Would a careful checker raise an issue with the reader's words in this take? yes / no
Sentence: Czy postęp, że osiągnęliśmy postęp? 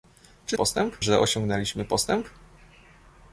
no